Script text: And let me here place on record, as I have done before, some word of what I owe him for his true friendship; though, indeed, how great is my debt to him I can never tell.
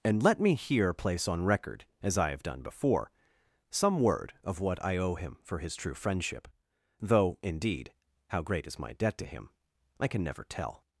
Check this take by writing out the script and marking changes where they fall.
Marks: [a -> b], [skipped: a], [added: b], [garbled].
And let me here place on record, as I have done before, some word of what I owe him for his true friendship; though, indeed, how great is my debt to him I can never tell.